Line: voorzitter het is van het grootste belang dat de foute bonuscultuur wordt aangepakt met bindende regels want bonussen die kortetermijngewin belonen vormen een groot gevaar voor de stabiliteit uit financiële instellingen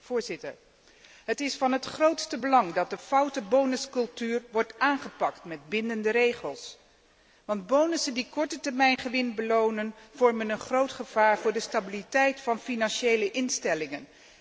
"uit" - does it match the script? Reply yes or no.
no